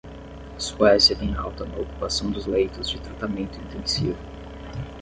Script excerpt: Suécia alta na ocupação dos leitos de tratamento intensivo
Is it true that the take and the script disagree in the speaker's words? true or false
true